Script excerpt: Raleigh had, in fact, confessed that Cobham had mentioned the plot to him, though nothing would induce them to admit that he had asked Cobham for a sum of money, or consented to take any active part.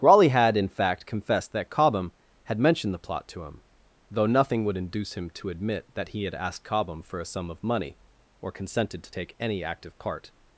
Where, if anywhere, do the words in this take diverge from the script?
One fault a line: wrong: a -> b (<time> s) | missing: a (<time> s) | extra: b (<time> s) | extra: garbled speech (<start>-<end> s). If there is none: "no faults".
wrong: them -> him (5.1 s)